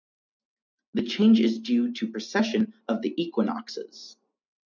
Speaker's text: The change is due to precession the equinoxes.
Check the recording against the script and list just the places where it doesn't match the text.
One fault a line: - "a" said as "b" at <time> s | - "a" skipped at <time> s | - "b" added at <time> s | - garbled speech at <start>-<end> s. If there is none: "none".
- "of" added at 2.9 s